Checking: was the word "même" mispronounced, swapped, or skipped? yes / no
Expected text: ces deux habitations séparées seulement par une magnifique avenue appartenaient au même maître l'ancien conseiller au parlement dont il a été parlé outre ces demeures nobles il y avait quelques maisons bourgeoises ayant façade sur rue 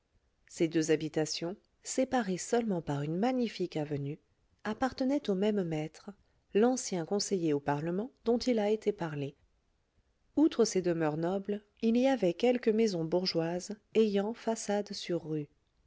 no